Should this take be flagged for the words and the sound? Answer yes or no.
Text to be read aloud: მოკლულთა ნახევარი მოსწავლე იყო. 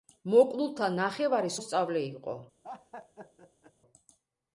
yes